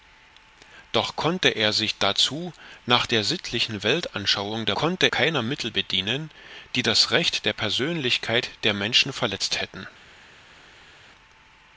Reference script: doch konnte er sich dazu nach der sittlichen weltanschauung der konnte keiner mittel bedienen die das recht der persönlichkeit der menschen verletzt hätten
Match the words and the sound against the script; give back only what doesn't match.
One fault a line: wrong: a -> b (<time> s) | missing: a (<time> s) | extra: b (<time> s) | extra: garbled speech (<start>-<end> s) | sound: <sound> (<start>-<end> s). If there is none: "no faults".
no faults